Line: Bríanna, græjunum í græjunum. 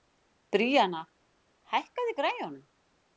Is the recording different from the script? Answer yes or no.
yes